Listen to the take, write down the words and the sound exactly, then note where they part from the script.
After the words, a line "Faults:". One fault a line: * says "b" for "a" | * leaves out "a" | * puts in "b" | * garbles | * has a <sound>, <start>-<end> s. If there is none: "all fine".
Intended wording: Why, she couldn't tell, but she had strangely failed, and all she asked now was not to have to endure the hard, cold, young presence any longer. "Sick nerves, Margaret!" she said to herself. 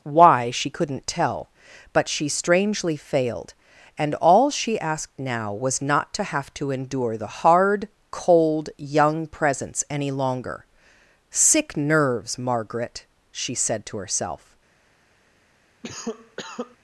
Why, she couldn't tell, but she strangely failed, and all she asked now was not to have to endure the hard, cold, young presence any longer. "Sick nerves, Margaret!" she said to herself.
Faults:
* leaves out "had"
* has a cough, 15.8-16.8 s